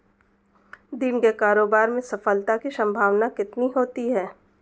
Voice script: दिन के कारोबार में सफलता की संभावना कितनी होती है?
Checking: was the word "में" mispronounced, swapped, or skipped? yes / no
no